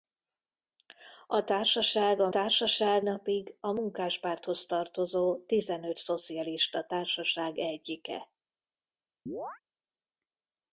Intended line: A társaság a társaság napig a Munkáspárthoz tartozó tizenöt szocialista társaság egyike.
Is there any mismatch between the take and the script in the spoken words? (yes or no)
no